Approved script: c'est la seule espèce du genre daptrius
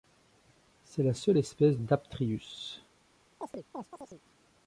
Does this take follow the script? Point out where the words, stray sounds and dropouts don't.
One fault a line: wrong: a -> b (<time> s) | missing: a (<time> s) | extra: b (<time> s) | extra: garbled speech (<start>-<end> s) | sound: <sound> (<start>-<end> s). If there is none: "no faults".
missing: du genre (1.8 s)
sound: chirp (3.4-4.2 s)